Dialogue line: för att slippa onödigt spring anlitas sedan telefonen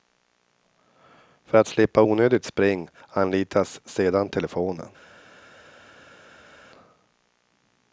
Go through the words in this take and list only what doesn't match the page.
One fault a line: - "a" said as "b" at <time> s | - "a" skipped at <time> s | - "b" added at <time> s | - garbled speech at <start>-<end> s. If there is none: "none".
none